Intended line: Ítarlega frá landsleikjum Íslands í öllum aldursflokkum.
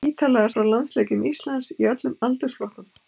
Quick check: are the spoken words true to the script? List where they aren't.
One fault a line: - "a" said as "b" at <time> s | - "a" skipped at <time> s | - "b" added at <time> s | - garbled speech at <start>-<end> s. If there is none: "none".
none